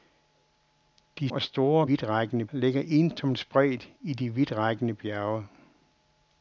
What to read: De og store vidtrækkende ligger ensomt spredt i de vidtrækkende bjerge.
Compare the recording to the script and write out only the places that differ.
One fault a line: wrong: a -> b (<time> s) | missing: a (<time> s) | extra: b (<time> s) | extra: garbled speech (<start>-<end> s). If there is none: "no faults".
no faults